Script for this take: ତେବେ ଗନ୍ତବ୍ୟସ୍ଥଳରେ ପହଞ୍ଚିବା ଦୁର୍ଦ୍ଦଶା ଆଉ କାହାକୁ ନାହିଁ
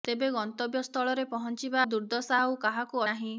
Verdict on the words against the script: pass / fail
pass